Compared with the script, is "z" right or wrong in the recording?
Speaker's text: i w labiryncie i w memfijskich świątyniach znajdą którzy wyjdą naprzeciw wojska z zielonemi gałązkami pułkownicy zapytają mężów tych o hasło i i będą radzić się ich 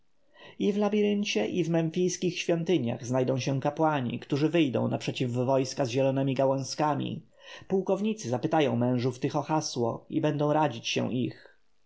right